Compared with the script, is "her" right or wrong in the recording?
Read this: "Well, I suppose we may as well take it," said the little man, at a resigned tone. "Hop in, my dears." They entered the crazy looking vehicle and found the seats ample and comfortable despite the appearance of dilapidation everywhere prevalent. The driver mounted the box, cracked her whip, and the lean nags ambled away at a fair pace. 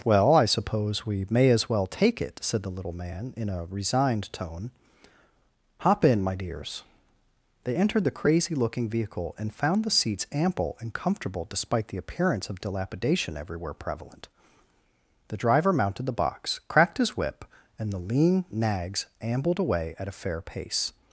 wrong